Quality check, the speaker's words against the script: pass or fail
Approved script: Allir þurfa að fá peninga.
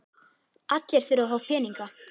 pass